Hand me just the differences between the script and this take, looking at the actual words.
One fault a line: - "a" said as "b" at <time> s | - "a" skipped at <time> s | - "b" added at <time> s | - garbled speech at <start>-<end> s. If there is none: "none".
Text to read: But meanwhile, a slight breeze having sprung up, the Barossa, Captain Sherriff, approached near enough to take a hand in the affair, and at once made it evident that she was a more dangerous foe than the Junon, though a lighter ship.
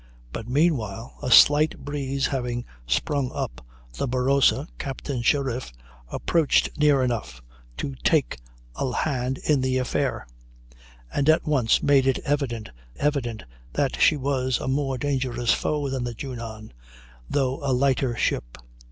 - "evident" added at 13.0 s